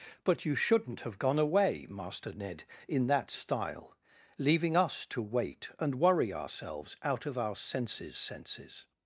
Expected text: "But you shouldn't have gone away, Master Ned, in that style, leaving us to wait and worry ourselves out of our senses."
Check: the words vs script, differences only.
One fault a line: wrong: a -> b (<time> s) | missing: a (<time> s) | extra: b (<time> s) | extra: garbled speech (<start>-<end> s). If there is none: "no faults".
extra: senses (8.2 s)